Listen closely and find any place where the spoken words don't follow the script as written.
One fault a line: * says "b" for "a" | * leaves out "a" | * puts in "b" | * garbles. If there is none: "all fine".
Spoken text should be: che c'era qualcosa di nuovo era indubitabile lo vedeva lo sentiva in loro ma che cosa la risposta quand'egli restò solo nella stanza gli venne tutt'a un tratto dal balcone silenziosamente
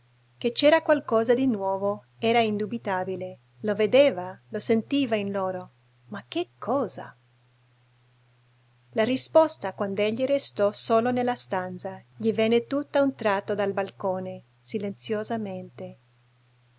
all fine